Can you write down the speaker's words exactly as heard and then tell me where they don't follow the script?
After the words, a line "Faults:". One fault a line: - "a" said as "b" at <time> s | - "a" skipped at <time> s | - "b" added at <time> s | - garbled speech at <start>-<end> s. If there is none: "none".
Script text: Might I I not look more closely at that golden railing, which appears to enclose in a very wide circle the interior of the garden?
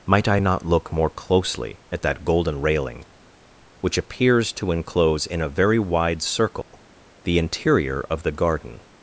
Might I not look more closely at that golden railing, which appears to enclose in a very wide circle the interior of the garden?
Faults:
- "I" skipped at 0.4 s